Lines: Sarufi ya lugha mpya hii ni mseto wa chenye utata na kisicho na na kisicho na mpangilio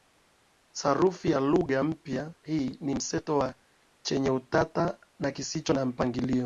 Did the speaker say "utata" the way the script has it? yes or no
yes